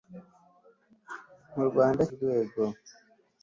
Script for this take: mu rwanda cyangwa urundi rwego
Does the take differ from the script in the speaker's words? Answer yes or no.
yes